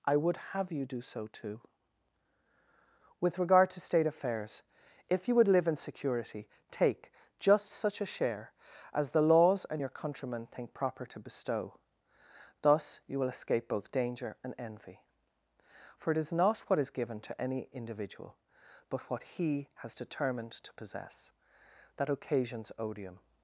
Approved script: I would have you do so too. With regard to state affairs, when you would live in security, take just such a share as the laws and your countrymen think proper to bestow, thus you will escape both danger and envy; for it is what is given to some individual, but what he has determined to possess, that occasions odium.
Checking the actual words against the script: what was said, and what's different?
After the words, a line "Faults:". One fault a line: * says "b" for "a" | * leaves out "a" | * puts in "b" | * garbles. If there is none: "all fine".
I would have you do so too. With regard to state affairs, if you would live in security, take just such a share as the laws and your countrymen think proper to bestow, thus you will escape both danger and envy; for it is not what is given to any individual, but what he has determined to possess, that occasions odium.
Faults:
* says "if" for "when"
* puts in "not"
* says "any" for "some"